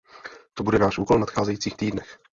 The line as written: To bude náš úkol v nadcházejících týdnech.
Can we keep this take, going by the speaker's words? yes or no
yes